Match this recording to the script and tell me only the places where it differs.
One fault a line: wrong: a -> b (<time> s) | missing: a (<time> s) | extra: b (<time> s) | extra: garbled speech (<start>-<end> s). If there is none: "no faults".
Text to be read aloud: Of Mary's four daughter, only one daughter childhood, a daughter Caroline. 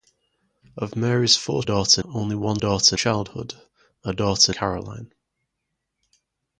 no faults